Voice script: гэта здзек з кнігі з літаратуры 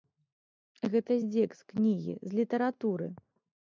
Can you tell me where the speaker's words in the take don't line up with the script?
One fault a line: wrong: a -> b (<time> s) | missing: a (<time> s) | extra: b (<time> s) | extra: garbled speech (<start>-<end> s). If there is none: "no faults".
no faults